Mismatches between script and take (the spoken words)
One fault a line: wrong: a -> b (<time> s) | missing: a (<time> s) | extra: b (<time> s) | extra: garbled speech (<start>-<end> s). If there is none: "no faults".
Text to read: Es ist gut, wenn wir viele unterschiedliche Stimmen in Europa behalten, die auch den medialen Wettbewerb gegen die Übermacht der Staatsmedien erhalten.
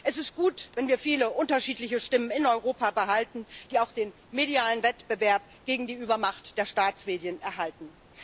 no faults